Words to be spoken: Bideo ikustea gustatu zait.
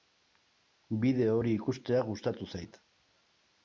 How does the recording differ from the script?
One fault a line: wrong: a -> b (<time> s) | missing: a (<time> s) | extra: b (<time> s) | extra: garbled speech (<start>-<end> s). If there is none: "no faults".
extra: hori (1.4 s)